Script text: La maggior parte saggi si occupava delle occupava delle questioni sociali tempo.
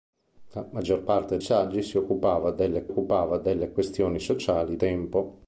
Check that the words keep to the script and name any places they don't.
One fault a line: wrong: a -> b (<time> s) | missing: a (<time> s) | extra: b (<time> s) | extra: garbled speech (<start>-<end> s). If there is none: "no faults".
no faults